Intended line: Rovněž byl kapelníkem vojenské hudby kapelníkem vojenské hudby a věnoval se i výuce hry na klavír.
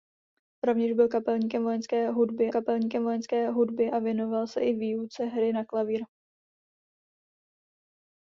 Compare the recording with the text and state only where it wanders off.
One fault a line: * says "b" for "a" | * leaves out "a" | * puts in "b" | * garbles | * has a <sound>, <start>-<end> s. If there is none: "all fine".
all fine